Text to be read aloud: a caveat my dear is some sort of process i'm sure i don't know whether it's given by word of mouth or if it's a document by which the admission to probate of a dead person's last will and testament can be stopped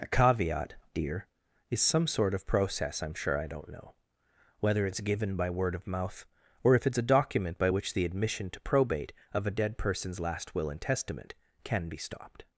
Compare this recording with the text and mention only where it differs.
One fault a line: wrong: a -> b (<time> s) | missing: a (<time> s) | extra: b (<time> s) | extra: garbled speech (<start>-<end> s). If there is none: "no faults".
missing: my (0.7 s)